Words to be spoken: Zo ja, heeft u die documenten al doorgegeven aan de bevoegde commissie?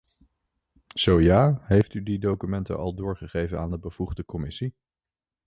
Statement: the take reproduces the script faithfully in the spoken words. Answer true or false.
true